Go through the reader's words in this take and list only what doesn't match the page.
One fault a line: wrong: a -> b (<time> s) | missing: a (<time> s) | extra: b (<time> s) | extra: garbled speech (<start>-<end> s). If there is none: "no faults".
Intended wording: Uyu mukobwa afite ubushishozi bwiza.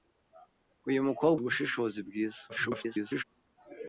missing: afite (1.4 s)
extra: garbled speech (2.5-3.2 s)